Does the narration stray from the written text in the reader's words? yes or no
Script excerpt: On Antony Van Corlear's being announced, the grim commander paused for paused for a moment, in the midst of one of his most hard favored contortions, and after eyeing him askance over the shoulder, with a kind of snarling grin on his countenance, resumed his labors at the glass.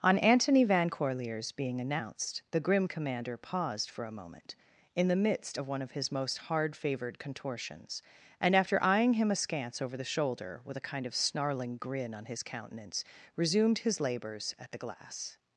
yes